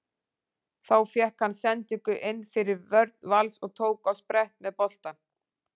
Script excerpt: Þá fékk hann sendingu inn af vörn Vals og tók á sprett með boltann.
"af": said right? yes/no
no